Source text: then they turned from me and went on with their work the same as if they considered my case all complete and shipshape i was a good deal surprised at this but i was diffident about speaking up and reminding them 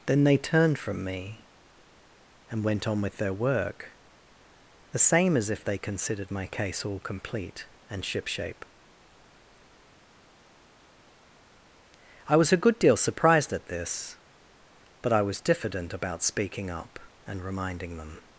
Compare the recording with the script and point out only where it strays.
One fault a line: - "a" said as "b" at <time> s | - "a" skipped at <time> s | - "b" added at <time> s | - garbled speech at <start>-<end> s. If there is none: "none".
none